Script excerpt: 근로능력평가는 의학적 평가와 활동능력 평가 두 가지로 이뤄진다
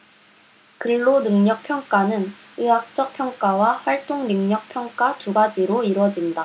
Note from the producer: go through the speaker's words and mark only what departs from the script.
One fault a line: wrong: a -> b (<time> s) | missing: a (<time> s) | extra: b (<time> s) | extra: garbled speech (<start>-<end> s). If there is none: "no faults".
no faults